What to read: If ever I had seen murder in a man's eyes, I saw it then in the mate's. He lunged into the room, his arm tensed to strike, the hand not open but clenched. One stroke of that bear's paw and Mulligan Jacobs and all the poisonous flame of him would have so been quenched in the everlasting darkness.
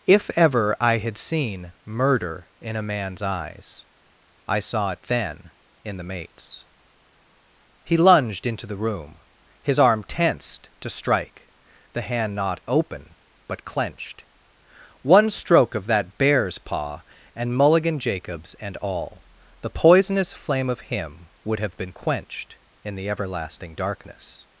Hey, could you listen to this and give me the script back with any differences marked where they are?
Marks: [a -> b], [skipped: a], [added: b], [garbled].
If ever I had seen murder in a man's eyes, I saw it then in the mate's. He lunged into the room, his arm tensed to strike, the hand not open but clenched. One stroke of that bear's paw and Mulligan Jacobs and all the poisonous flame of him would have [skipped: so] been quenched in the everlasting darkness.